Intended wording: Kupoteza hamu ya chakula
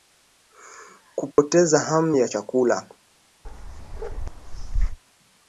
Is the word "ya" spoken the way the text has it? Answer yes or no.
yes